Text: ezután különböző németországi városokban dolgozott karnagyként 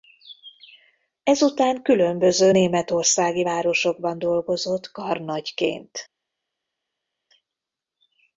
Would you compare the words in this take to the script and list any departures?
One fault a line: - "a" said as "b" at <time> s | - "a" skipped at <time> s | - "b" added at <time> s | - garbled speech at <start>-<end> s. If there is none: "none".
none